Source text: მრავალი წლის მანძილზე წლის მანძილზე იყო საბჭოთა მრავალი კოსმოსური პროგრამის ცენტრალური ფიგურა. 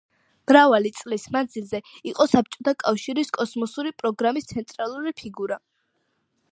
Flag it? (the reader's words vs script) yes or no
yes